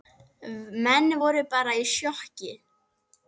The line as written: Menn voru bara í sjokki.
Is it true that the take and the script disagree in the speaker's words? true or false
false